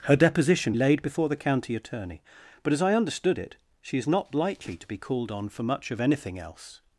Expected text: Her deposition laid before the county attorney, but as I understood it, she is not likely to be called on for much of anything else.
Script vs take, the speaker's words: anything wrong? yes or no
no